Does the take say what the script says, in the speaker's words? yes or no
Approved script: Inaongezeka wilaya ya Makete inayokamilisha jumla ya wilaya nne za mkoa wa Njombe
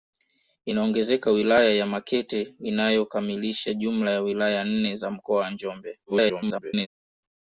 no